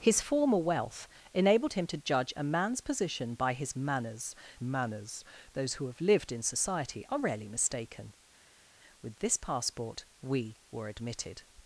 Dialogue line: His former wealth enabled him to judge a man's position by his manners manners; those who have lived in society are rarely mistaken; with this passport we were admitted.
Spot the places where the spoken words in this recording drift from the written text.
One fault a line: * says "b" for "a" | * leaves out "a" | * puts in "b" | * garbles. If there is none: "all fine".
all fine